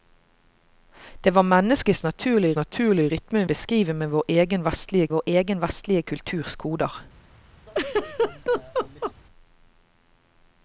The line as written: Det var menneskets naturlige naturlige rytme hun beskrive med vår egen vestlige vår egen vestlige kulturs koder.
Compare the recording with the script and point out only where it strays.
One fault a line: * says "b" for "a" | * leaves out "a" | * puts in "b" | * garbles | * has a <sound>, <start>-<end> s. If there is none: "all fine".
* has a laugh, 7.7-9.1 s